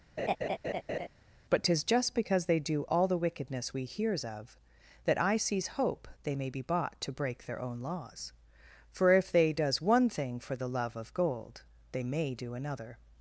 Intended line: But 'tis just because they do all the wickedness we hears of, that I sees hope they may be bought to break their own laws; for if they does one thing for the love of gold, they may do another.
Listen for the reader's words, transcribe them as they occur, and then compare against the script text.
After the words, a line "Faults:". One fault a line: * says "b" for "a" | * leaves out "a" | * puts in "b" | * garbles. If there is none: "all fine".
But 'tis just because they do all the wickedness we hears of, that I sees hope they may be bought to break their own laws; for if they does one thing for the love of gold, they may do another.
Faults:
all fine